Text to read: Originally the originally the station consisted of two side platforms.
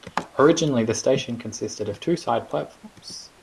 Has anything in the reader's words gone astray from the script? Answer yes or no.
yes